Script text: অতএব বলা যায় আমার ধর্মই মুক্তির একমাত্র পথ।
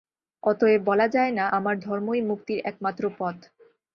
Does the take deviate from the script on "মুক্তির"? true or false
false